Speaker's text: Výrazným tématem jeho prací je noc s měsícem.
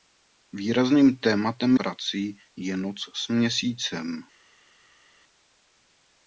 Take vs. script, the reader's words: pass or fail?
fail